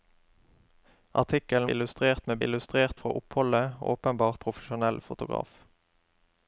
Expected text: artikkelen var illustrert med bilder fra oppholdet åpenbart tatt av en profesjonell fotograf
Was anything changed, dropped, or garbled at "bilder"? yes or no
yes